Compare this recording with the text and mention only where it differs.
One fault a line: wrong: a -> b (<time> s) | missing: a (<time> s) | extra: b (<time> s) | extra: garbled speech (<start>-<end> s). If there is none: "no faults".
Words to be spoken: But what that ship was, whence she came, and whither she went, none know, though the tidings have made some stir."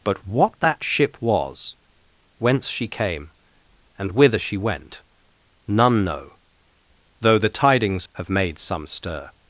no faults